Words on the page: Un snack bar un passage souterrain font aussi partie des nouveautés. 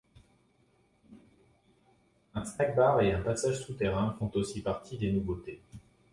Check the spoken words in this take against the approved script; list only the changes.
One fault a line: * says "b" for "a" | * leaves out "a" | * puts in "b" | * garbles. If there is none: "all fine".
* puts in "et"